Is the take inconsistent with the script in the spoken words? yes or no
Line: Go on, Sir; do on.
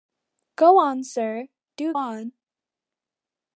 no